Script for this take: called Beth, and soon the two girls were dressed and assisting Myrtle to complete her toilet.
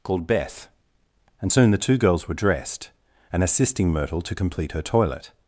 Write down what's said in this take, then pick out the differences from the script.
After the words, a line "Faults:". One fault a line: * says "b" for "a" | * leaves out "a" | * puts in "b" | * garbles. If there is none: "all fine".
called Beth, and soon the two girls were dressed and assisting Myrtle to complete her toilet.
Faults:
all fine